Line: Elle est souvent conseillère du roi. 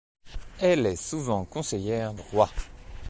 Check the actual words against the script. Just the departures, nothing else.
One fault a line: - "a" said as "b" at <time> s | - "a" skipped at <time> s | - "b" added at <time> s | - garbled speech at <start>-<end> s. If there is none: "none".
- "du" skipped at 2.1 s